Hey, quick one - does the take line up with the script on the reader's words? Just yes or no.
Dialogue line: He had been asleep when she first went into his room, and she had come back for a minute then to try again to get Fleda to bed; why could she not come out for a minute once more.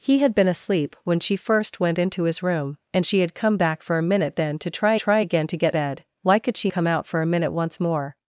no